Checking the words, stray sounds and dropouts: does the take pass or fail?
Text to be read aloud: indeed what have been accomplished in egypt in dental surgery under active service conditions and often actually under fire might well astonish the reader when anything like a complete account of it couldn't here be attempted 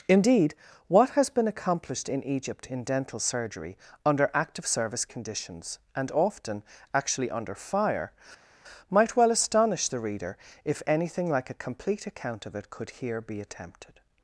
fail